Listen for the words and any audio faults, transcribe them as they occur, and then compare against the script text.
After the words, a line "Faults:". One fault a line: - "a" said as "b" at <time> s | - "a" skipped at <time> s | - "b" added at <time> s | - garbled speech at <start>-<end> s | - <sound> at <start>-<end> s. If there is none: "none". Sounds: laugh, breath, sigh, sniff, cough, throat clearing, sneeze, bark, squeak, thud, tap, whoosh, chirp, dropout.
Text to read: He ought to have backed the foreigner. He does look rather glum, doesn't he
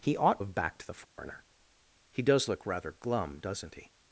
He ought have backed the foreigner. He does look rather glum, doesn't he
Faults:
- "to" skipped at 0.4 s
- dropout at 1.0-1.2 s